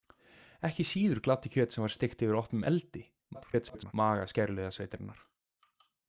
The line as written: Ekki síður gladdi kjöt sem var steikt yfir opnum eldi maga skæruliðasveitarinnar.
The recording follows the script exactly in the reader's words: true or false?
false